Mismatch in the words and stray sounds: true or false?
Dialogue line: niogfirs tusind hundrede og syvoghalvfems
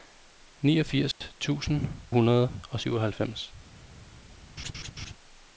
true